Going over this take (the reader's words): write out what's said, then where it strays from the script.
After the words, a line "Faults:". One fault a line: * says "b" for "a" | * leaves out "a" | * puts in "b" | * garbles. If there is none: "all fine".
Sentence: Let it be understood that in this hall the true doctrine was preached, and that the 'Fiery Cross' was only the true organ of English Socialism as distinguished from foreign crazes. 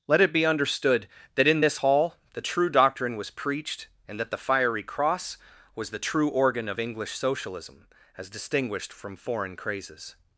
Let it be understood that in this hall the true doctrine was preached, and that the 'Fiery Cross' was the true organ of English Socialism as distinguished from foreign crazes.
Faults:
* leaves out "only"